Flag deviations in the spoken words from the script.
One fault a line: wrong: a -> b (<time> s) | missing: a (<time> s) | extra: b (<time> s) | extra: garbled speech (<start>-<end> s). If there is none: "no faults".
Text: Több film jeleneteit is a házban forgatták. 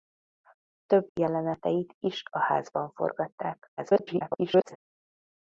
missing: film (1.1 s)
extra: garbled speech (3.8-4.8 s)